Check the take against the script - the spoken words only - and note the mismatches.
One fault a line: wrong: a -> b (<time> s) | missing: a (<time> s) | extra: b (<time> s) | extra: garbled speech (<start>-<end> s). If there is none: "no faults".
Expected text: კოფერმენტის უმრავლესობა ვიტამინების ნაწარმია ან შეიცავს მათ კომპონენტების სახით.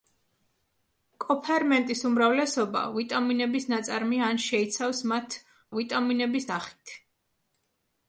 wrong: კომპონენტების -> ვიტამინების (5.8 s)